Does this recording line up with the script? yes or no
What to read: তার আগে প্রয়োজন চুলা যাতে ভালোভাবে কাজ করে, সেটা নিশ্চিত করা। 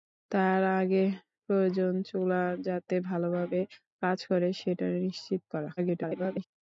no